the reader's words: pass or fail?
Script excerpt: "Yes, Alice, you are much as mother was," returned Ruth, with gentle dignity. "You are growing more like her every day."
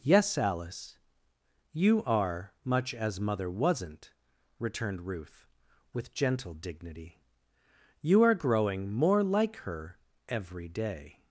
fail